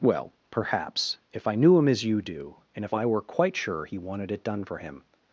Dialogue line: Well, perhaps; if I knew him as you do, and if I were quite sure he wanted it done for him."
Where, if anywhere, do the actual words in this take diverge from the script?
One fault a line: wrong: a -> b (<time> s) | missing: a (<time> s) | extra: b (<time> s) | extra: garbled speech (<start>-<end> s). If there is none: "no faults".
no faults